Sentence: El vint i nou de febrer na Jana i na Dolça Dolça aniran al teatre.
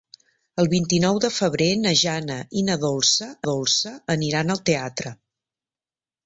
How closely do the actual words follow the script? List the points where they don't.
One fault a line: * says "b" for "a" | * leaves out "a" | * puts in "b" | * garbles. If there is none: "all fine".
all fine